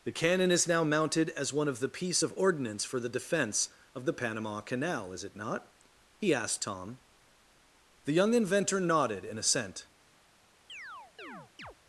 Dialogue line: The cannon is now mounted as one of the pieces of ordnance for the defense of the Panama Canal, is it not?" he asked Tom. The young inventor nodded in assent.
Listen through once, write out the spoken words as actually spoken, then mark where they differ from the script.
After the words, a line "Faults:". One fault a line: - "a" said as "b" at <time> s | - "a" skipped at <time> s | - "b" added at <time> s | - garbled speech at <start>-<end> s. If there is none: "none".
The cannon is now mounted as one of the piece of ordnance for the defense of the Panama Canal, is it not?" he asked Tom. The young inventor nodded in assent.
Faults:
- "pieces" said as "piece" at 1.9 s